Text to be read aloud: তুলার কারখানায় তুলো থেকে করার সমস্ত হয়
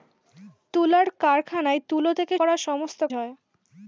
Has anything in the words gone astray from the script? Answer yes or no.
no